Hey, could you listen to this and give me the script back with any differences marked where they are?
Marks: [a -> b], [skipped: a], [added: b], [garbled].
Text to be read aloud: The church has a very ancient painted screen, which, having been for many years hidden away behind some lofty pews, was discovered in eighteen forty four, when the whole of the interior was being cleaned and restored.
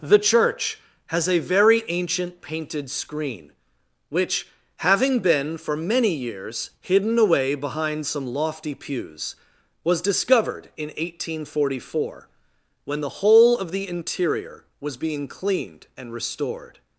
The church has a very ancient painted screen, which, having been for many years hidden away behind some lofty pews, was discovered in eighteen forty four, when the whole of the interior was being cleaned and restored.